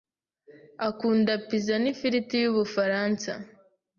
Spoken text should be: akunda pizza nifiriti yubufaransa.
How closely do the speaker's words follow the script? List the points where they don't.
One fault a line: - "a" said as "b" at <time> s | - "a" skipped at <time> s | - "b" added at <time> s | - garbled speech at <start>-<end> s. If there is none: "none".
none